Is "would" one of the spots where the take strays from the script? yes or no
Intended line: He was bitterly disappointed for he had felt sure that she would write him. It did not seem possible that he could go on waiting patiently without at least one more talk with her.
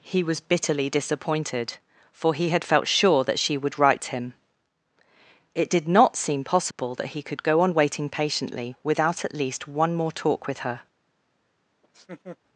no